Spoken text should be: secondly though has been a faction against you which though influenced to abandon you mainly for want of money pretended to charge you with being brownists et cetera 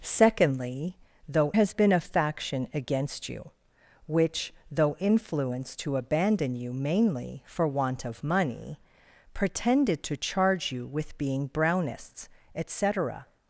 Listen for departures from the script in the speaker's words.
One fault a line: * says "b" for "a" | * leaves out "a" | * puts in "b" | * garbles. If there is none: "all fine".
all fine